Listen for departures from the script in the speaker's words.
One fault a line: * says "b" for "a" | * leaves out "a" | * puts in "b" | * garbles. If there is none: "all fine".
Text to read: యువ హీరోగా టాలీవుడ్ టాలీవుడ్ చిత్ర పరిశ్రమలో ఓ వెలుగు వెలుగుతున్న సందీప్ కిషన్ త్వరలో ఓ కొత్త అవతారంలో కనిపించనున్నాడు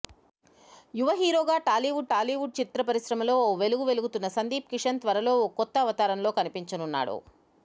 all fine